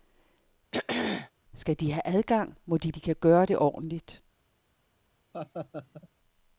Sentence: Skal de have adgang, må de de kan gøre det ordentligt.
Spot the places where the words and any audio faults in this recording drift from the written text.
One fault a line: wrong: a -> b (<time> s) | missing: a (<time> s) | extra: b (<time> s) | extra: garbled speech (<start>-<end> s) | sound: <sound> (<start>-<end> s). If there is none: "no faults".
sound: throat clearing (0.7-1.3 s)
sound: laugh (5.3-6.1 s)